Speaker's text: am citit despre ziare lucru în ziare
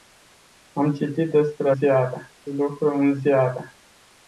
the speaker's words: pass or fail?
pass